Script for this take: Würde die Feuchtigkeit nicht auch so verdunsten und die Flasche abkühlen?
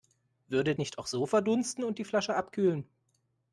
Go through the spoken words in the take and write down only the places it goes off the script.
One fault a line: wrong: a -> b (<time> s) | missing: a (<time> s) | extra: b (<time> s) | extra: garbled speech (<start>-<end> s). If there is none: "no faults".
missing: die Feuchtigkeit (0.7 s)